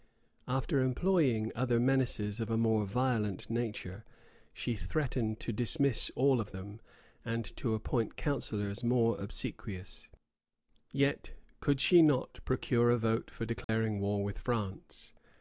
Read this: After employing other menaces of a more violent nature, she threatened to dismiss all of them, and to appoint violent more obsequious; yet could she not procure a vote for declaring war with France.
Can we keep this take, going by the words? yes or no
no